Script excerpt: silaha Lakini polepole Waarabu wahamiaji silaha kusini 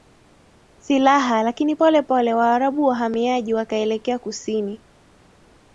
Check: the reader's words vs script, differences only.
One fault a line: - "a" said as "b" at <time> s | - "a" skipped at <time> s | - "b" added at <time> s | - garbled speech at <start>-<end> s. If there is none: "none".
- "silaha" said as "wakaelekea" at 3.5 s